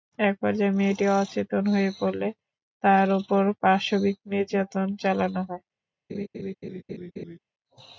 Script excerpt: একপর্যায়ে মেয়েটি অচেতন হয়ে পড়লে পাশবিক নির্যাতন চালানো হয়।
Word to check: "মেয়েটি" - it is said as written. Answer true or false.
true